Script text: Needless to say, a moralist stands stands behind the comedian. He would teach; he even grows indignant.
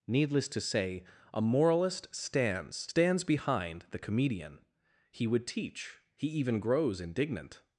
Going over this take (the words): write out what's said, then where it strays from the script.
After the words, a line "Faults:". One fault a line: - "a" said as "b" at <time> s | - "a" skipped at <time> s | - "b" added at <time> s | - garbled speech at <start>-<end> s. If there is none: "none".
Needless to say, a moralist stands stands behind the comedian. He would teach; he even grows indignant.
Faults:
none